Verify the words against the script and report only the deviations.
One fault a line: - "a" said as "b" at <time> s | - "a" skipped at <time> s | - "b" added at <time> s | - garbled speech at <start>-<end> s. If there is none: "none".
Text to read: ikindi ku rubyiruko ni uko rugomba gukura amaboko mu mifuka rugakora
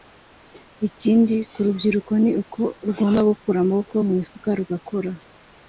none